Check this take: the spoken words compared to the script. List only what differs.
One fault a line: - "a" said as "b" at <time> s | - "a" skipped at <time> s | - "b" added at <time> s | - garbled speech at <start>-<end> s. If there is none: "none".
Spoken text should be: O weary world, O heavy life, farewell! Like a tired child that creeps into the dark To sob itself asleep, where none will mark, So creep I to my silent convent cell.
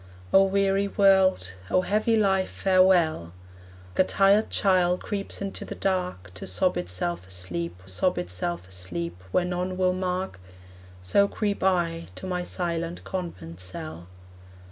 - "Like" skipped at 3.3 s
- "that" skipped at 5.0 s
- "sob itself asleep" added at 7.9 s